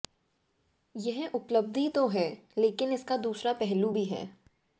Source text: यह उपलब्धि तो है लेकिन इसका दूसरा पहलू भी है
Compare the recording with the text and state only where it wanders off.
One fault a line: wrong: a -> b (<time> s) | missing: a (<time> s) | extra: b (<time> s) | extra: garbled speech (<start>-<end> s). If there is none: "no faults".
no faults